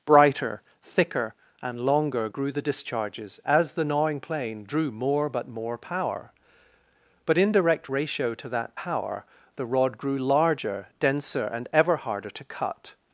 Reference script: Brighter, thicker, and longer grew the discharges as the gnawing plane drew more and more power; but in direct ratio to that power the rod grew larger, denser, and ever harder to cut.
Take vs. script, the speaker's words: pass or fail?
fail